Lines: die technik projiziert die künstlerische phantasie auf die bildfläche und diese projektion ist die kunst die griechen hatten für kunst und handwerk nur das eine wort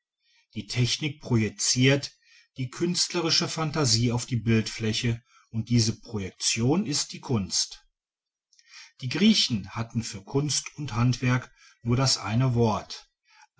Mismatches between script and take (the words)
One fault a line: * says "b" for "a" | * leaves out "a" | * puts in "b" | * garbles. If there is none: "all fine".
all fine